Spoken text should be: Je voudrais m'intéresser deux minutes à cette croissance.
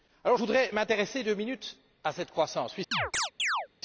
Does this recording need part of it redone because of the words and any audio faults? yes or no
yes